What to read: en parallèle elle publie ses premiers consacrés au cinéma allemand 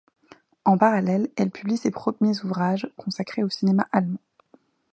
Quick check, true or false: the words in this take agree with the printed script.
false